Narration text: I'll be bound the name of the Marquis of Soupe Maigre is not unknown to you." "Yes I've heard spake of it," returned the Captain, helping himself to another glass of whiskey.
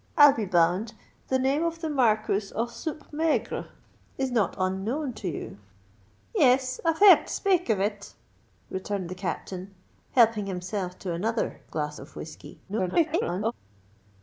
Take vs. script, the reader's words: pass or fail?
fail